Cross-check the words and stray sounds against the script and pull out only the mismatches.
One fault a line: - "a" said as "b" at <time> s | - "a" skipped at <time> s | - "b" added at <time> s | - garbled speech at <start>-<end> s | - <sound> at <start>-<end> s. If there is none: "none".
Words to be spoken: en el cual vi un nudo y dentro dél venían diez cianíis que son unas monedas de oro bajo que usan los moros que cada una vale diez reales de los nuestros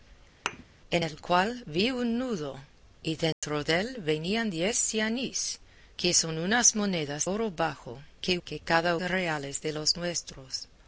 - thud at 0.5-0.6 s
- dropout at 3.3-3.4 s
- "de" skipped at 7.3 s
- "usan los moros" skipped at 8.4 s
- "una vale diez" skipped at 9.0 s